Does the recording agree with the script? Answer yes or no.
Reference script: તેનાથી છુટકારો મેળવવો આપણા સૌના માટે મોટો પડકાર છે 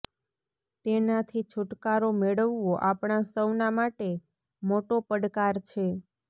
yes